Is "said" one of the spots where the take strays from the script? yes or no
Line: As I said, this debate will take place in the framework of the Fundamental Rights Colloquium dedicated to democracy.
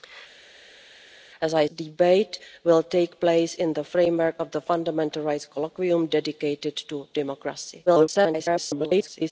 yes